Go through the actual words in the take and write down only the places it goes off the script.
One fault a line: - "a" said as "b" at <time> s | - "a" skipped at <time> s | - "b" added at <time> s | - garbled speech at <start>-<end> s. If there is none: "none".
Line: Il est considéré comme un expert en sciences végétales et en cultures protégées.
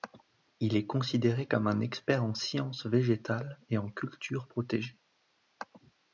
none